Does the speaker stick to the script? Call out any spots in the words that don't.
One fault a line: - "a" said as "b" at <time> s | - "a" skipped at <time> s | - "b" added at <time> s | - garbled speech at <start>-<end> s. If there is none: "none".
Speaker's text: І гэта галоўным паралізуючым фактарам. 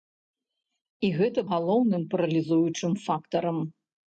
none